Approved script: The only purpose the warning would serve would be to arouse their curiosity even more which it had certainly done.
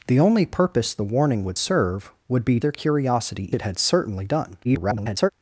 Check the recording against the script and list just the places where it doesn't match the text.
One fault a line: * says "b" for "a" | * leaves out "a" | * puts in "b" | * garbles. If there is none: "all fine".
* leaves out "to arouse"
* leaves out "even more which"
* garbles